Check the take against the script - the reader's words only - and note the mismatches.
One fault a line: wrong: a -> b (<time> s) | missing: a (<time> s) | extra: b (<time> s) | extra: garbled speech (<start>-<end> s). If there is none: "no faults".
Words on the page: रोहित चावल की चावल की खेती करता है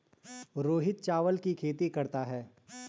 missing: चावल की (1.5 s)